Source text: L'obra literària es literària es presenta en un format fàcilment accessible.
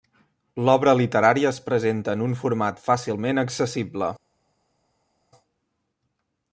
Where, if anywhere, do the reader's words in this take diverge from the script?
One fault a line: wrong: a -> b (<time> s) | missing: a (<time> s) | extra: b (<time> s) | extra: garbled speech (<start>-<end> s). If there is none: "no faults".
missing: literària es (1.6 s)